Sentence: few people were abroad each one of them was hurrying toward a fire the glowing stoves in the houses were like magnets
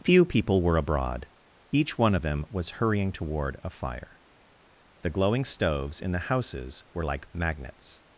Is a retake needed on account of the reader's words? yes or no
no